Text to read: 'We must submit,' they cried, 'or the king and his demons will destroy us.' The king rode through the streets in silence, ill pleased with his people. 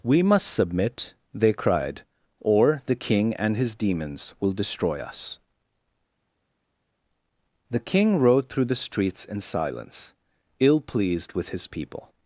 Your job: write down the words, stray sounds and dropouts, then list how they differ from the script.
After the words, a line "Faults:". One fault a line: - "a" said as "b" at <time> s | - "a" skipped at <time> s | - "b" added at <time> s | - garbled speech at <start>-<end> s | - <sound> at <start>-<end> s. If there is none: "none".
'We must submit,' they cried, 'or the king and his demons will destroy us.' The king rode through the streets in silence, ill pleased with his people.
Faults:
none